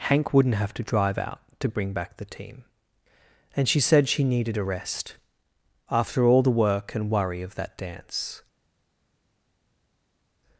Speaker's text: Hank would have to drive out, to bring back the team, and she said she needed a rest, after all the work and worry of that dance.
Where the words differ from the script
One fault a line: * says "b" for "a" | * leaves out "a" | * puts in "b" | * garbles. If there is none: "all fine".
* says "wouldn't" for "would"